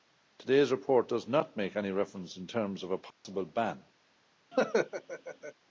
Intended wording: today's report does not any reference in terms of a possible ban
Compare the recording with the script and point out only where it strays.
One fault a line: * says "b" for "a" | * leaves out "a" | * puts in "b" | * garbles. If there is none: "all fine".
* puts in "make"